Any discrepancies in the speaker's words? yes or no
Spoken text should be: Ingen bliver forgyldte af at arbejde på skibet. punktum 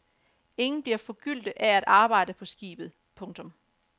no